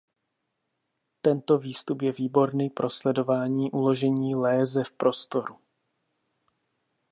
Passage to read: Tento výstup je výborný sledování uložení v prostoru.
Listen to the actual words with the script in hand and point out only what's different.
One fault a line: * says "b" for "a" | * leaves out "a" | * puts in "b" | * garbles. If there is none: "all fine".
* puts in "pro"
* puts in "léze"